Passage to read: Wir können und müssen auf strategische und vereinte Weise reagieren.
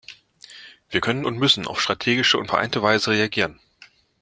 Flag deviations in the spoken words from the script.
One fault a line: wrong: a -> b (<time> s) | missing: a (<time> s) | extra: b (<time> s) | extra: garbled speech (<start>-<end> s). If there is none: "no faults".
no faults